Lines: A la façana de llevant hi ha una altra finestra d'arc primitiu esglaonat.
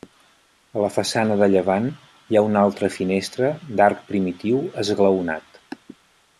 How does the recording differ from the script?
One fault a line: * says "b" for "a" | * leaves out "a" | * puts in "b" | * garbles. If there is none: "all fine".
all fine